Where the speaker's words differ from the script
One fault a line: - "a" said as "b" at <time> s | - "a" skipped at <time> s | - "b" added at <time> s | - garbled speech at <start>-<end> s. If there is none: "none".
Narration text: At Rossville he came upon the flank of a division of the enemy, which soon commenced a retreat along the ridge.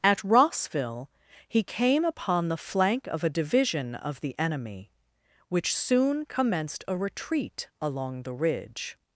none